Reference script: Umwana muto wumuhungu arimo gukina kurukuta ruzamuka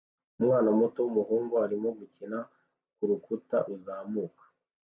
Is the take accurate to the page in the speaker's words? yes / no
yes